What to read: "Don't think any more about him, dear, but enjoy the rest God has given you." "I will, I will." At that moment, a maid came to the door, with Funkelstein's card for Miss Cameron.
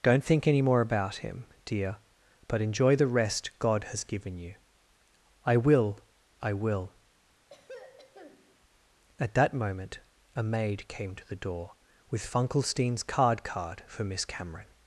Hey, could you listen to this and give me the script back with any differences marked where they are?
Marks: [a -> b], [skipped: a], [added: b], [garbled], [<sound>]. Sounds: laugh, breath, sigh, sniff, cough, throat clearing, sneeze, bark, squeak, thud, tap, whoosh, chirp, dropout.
"Don't think any more about him, dear, but enjoy the rest God has given you." "I will, I will." [throat clearing] At that moment, a maid came to the door, with Funkelstein's card [added: card] for Miss Cameron.